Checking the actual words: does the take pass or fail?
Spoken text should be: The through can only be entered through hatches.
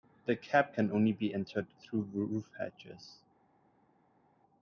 fail